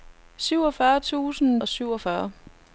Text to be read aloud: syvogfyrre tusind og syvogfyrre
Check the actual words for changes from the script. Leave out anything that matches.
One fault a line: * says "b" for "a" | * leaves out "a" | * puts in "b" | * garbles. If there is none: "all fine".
all fine